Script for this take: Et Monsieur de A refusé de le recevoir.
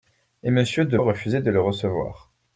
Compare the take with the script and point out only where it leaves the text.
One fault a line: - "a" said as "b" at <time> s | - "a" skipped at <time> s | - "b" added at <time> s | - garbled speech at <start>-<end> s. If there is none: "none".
none